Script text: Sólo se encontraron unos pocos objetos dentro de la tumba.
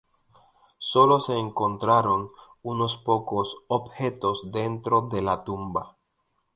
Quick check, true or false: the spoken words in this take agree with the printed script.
true